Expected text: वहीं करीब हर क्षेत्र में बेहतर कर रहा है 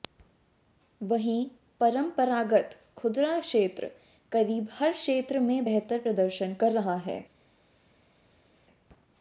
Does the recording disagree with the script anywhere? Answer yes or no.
yes